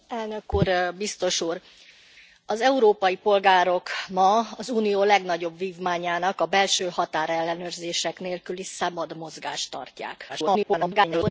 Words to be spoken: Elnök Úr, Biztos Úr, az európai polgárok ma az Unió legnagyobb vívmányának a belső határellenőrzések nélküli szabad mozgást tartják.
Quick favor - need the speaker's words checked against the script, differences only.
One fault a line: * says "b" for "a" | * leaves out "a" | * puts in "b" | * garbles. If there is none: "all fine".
* garbles